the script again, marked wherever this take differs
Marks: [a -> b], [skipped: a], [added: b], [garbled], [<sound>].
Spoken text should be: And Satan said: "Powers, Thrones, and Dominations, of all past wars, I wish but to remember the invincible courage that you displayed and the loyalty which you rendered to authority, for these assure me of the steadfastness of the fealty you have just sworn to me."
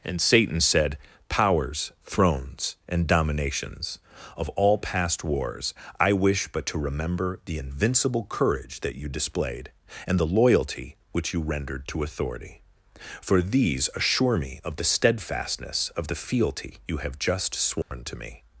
And Satan said: "Powers, Thrones, and Dominations, of all past wars, I wish but to remember the invincible courage that you displayed and the loyalty which you rendered to authority, for these assure me of the steadfastness of the fealty you have just sworn [dropout] to me."